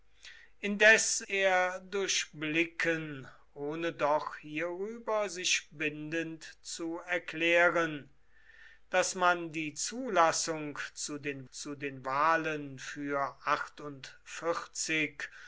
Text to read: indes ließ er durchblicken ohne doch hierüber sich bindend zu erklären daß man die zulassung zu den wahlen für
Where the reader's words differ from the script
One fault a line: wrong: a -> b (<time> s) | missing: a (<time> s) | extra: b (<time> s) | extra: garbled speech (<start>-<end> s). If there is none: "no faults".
missing: ließ (1.2 s)
extra: zu den (11.5 s)